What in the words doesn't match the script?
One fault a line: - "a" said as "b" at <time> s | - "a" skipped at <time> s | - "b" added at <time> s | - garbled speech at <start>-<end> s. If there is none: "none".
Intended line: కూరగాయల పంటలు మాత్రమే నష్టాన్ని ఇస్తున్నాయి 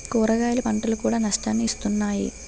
- "మాత్రమే" said as "కూడా" at 1.0 s